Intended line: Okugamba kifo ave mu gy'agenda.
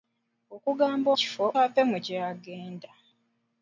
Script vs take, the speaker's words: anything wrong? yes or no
no